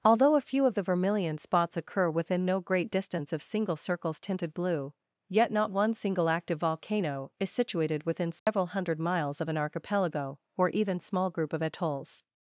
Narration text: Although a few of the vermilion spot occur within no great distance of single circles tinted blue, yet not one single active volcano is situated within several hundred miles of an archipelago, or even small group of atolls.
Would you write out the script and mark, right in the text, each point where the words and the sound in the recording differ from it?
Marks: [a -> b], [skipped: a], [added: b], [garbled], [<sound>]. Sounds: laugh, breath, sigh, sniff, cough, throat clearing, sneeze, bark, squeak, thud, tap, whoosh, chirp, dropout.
Although a few of the vermilion [spot -> spots] occur within no great distance of single circles tinted blue, yet not one single active volcano is situated within several [dropout] hundred miles of an archipelago, or even small group of atolls.